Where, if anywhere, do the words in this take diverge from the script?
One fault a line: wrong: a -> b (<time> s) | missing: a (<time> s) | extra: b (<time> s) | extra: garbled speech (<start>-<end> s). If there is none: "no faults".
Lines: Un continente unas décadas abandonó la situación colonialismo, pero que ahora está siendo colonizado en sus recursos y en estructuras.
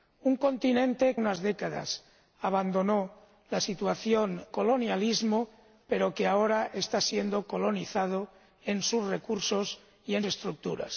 no faults